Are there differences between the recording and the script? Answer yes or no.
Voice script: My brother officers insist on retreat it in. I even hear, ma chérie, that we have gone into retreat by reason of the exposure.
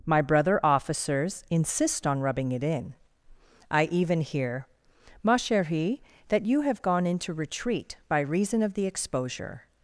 yes